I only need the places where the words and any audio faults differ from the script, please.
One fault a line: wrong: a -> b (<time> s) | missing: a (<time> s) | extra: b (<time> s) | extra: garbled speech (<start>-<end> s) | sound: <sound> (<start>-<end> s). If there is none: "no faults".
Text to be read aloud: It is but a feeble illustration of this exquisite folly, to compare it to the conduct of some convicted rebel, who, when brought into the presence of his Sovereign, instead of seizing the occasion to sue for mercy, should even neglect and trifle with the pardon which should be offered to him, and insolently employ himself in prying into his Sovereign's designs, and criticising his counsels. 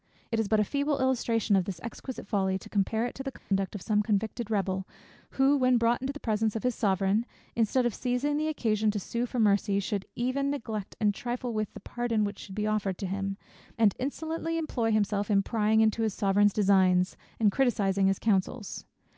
sound: dropout (3.4-3.5 s)